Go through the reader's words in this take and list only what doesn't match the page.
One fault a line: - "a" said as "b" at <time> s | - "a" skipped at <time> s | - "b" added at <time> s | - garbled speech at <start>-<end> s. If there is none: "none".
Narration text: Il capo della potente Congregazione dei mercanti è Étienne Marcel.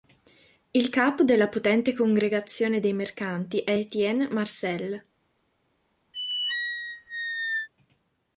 none